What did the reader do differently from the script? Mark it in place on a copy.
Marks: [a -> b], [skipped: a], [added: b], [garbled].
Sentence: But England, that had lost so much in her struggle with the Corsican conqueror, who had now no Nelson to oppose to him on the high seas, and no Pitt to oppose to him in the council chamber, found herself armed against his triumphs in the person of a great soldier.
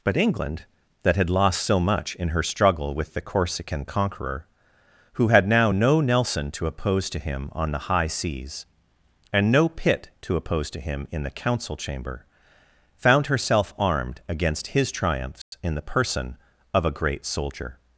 But England, that had lost so much in her struggle with the Corsican conqueror, who had now no Nelson to oppose to him on the high seas, and no Pitt to oppose to him in the council chamber, found herself armed against his triumphs in the person of a great soldier.